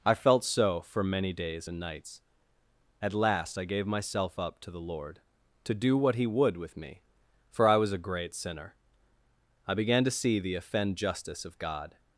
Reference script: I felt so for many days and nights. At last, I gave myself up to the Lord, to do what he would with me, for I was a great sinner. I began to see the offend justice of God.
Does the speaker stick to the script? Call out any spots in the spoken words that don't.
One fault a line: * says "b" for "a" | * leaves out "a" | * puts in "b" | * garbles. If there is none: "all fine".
all fine